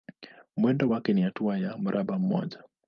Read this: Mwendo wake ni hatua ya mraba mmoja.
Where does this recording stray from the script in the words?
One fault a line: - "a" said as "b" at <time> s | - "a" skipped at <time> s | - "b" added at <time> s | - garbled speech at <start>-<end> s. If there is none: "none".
none